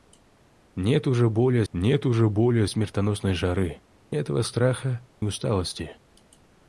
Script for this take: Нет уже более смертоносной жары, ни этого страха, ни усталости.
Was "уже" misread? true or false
false